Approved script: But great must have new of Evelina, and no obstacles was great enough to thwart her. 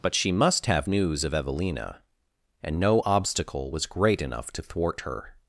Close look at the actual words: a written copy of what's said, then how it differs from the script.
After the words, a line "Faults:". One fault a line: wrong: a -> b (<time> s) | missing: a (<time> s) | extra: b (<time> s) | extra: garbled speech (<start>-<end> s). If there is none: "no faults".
But she must have news of Evelina, and no obstacle was great enough to thwart her.
Faults:
wrong: great -> she (0.1 s)
wrong: new -> news (0.9 s)
wrong: obstacles -> obstacle (3.1 s)